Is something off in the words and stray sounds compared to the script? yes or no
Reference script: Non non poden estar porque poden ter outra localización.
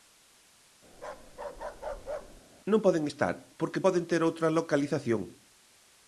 yes